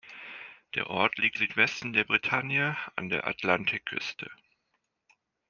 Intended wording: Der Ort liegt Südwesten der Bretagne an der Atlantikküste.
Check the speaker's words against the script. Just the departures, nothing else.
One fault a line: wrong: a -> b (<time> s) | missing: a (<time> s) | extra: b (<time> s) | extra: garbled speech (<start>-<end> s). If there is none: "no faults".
no faults